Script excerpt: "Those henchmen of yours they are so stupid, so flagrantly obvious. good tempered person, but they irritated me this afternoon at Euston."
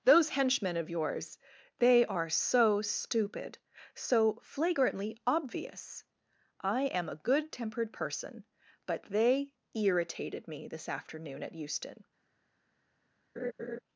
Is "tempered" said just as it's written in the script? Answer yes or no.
yes